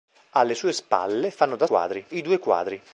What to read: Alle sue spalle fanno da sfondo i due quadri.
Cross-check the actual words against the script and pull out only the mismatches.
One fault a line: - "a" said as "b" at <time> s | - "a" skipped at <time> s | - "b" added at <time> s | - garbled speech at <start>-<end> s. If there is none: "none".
- "sfondo" said as "quadri" at 1.6 s